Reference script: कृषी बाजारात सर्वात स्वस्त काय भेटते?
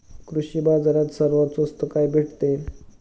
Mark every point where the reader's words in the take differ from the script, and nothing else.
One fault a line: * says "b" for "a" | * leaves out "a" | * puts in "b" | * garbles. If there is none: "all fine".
all fine